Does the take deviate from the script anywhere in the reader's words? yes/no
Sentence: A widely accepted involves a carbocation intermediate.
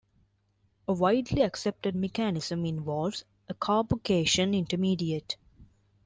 yes